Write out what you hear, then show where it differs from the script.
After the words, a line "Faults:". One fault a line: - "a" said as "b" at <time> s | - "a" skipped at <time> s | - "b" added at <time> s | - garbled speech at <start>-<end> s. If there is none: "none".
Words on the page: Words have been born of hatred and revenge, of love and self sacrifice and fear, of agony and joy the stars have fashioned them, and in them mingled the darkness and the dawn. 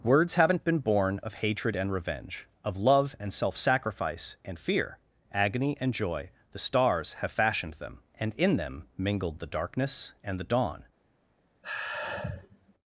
Words haven't been born of hatred and revenge, of love and self sacrifice and fear, agony and joy the stars have fashioned them, and in them mingled the darkness and the dawn.
Faults:
- "have" said as "haven't" at 0.3 s
- "of" skipped at 5.0 s